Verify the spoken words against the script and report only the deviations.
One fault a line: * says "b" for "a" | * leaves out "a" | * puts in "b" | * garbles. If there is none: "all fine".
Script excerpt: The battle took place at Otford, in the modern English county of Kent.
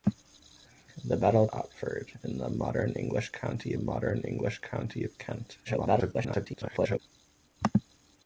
* says "Otford in the modern English county" for "took place at Otford in the"
* garbles